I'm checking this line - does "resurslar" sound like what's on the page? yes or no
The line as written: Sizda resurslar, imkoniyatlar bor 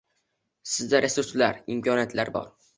yes